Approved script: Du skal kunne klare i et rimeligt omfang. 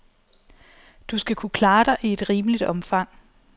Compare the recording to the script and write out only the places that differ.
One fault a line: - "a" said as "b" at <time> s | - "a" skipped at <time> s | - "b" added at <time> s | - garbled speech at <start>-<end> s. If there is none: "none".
- "dig" added at 1.8 s